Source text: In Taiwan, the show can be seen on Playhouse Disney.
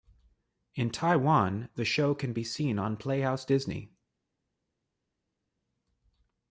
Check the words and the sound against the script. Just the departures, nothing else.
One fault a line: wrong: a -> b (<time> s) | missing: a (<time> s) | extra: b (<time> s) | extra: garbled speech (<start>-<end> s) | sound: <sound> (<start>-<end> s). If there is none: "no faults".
no faults